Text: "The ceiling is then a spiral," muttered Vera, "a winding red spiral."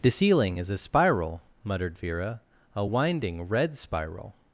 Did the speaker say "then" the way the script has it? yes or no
no